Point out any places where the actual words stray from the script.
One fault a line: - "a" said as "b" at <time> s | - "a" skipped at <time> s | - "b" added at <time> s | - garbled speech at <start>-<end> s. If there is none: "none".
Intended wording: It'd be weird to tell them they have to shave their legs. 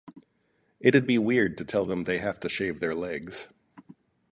none